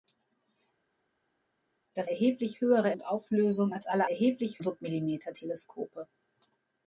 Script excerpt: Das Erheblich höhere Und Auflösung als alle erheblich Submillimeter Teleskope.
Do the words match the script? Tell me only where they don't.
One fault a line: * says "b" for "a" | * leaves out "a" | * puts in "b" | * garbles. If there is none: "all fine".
all fine